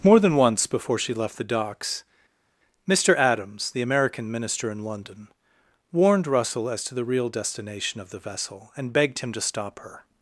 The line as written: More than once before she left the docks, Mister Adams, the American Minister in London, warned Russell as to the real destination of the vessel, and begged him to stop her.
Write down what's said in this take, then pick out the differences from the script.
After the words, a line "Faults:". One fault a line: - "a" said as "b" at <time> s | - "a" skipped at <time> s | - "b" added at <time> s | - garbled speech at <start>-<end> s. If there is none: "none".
More than once before she left the docks, Mister Adams, the American Minister in London, warned Russell as to the real destination of the vessel, and begged him to stop her.
Faults:
none